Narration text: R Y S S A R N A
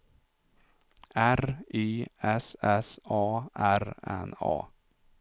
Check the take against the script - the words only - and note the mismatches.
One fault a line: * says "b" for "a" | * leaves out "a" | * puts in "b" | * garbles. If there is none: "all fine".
all fine